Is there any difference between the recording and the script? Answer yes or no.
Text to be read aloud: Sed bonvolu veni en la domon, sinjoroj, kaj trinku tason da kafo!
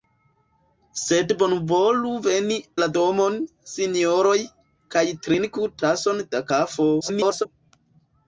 yes